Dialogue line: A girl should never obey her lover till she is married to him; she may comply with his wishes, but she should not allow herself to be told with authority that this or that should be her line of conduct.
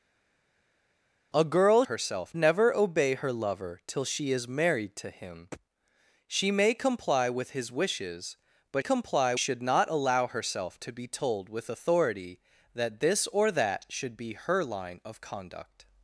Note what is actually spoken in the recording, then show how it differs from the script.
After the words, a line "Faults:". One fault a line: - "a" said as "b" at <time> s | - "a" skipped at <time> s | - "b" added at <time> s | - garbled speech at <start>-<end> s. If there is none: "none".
A girl herself never obey her lover till she is married to him; she may comply with his wishes, but comply should not allow herself to be told with authority that this or that should be her line of conduct.
Faults:
- "should" said as "herself" at 1.8 s
- "she" said as "comply" at 8.8 s